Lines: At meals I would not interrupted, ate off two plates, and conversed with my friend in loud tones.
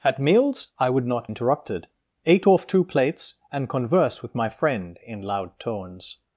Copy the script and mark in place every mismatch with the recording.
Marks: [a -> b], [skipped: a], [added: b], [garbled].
At meals I would not interrupted, ate off two plates, and conversed with my friend in loud tones.